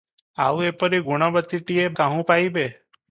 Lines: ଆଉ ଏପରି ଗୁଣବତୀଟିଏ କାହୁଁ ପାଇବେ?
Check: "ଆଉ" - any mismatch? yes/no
no